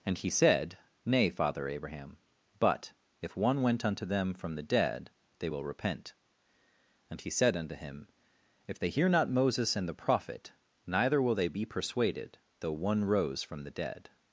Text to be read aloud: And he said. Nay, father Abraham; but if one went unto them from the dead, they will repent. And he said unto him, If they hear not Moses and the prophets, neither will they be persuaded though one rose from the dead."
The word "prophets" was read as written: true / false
false